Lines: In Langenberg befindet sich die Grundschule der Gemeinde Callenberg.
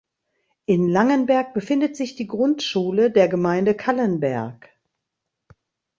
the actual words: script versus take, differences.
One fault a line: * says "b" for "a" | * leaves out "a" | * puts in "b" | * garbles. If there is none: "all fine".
all fine